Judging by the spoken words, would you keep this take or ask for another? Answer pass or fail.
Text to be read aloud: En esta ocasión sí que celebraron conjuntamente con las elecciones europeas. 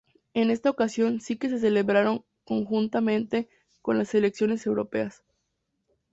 fail